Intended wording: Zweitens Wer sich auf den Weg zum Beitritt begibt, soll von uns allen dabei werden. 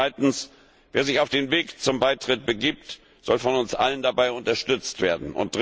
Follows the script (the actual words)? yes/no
no